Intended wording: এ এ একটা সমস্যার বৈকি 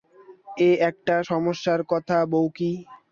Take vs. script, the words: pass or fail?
fail